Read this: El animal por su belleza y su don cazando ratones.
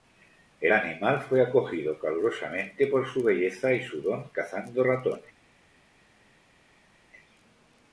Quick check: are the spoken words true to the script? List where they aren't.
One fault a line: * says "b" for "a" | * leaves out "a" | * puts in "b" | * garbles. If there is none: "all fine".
* puts in "fue acogido calurosamente"